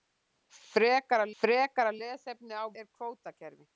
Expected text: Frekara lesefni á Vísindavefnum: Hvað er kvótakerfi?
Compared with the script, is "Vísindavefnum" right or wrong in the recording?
wrong